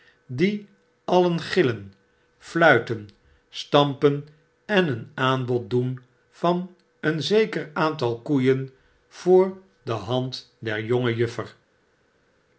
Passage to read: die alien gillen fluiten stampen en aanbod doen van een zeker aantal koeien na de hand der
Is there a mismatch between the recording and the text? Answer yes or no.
yes